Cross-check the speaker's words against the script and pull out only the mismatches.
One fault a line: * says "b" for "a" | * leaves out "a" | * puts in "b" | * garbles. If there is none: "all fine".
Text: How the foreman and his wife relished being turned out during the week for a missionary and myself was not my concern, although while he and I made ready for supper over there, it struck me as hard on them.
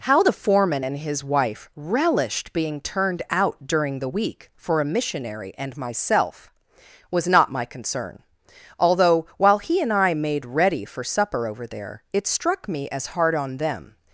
all fine